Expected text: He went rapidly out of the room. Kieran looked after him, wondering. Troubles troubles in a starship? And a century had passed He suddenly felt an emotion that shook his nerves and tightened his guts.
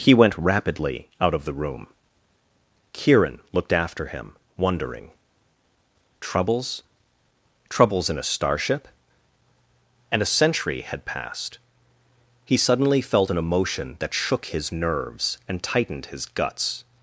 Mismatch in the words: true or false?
false